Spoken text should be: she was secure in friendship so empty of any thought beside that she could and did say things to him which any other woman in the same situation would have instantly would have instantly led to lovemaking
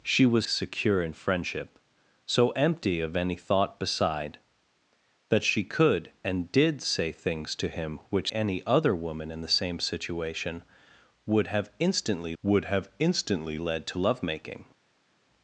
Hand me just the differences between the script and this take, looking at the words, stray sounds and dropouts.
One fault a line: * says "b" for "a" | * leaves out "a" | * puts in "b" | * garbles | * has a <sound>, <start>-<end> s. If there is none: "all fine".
all fine